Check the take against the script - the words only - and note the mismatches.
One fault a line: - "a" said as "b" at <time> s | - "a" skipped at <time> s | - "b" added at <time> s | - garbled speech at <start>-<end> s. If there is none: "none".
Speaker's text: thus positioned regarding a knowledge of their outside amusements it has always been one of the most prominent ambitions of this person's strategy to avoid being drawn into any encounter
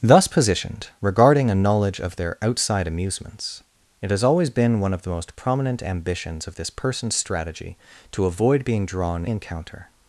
- "into any" skipped at 9.3 s